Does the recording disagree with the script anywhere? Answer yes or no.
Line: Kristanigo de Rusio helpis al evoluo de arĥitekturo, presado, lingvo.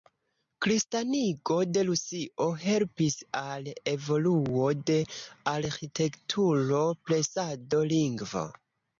no